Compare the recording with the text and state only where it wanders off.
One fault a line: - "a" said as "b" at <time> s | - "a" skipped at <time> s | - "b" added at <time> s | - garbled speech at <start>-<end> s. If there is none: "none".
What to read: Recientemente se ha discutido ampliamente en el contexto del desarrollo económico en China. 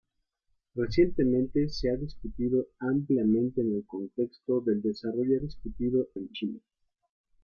- "económico" said as "discutido" at 5.4 s